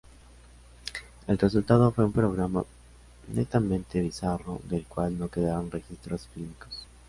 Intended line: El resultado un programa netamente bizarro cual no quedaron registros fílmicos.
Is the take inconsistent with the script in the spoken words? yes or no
yes